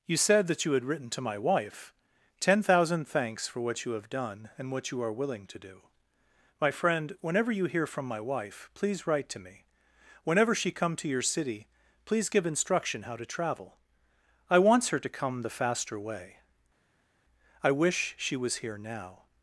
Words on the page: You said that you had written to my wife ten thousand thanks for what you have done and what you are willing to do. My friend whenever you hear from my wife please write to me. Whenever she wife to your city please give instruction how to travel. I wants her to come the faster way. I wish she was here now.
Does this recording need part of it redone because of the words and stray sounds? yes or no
yes